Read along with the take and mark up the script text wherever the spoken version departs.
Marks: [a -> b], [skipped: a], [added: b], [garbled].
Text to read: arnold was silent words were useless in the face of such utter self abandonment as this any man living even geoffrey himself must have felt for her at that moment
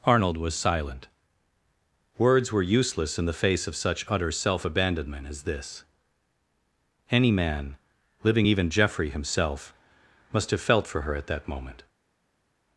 arnold was silent words were useless in the face of such utter self abandonment as this any man living even geoffrey himself must have felt for her at that moment